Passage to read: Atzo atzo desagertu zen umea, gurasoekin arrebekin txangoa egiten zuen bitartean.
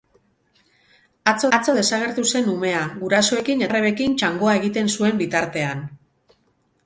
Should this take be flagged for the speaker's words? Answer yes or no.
no